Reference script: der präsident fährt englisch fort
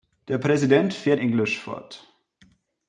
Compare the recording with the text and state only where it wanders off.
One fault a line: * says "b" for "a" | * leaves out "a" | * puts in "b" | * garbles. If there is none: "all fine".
all fine